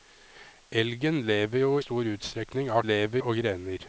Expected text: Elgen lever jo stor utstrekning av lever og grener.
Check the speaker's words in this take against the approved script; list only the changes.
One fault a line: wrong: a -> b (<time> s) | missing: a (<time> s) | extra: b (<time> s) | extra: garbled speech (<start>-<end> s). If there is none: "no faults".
no faults